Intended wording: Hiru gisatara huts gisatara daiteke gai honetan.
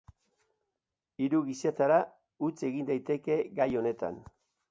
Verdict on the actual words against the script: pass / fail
fail